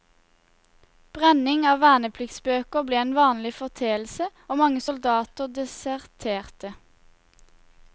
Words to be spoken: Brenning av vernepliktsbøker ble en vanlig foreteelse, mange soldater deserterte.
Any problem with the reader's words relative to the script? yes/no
yes